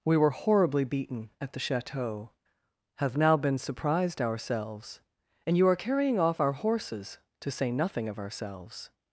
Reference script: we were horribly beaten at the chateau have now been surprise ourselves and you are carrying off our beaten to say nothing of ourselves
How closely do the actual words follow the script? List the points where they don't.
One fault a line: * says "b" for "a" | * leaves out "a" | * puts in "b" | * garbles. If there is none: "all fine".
* says "surprised" for "surprise"
* says "horses" for "beaten"